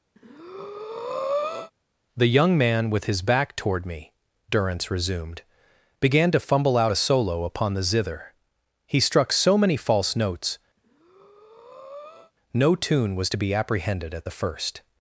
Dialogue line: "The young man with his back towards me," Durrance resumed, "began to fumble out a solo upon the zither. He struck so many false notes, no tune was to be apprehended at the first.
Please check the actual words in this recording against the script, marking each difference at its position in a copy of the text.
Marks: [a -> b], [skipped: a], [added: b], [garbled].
"The young man with his back [towards -> toward] me," Durrance resumed, "began to fumble out a solo upon the zither. He struck so many false notes, no tune was to be apprehended at the first.